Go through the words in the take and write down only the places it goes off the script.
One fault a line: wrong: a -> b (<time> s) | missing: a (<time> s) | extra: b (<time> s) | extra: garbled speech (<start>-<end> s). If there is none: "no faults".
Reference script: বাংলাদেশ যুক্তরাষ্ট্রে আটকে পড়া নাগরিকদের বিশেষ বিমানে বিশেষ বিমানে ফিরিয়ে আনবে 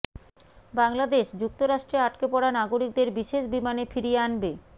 missing: বিশেষ বিমানে (3.8 s)